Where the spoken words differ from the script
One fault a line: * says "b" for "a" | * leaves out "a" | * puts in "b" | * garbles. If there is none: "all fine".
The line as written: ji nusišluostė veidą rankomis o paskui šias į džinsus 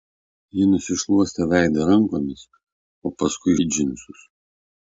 * leaves out "šias"